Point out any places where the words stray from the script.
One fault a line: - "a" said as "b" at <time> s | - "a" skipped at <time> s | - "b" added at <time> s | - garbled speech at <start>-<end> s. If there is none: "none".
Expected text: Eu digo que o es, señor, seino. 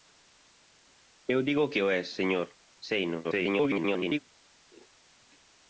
- garbled speech at 3.2-4.2 s